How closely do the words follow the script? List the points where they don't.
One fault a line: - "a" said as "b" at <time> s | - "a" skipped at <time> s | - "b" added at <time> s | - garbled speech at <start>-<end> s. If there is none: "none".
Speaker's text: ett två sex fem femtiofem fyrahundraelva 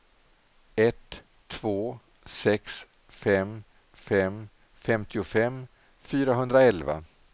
- "fem" added at 3.9 s